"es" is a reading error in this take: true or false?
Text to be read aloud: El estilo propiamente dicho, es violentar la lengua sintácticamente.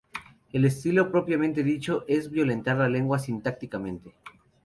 false